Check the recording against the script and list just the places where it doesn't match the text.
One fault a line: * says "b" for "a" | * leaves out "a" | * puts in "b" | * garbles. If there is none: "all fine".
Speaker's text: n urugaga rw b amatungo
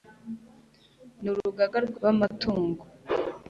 all fine